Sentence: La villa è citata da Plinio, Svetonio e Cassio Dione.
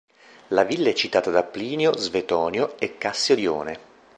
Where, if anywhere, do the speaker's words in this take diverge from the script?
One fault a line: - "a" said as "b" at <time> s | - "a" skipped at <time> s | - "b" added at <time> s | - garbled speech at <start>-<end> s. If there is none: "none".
none